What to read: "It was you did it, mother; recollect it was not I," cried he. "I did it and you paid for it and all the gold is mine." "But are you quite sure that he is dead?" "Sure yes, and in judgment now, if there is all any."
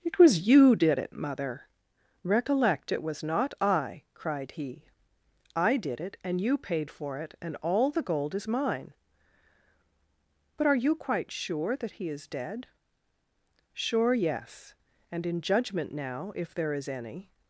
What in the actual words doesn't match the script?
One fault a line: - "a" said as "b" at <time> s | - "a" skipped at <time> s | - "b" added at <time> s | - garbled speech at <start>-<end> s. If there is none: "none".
- "all" skipped at 16.9 s